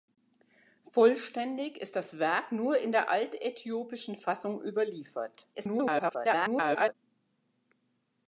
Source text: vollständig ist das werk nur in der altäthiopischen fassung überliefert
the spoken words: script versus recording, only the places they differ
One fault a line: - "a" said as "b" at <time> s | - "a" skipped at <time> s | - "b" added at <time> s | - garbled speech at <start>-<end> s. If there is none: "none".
- garbled speech at 5.5-6.9 s